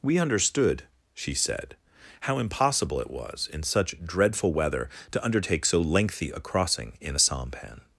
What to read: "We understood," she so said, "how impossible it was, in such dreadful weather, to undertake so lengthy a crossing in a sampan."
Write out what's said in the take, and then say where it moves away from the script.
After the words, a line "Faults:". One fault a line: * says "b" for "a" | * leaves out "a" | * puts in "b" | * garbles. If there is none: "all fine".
"We understood," she said, "how impossible it was, in such dreadful weather, to undertake so lengthy a crossing in a sampan."
Faults:
* leaves out "so"